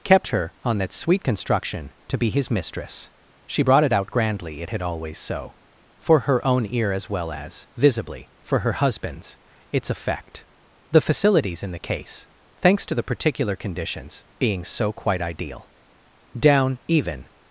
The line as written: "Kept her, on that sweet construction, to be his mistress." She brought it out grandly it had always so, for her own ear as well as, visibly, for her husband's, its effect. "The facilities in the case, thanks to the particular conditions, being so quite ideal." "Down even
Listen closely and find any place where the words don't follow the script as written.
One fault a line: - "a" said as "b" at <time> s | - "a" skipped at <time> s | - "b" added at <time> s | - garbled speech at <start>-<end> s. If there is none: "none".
none